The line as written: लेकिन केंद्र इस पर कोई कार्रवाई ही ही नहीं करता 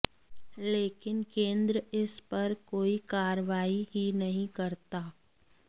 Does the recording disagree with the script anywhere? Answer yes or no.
yes